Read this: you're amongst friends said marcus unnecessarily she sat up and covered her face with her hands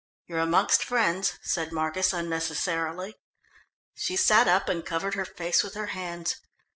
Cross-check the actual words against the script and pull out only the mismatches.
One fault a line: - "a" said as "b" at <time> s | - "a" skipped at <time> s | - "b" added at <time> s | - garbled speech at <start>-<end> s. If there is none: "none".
none